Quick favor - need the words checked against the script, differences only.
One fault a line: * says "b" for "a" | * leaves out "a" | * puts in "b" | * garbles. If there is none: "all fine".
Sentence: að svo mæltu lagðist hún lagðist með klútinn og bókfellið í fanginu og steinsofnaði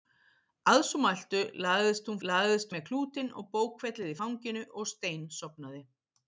all fine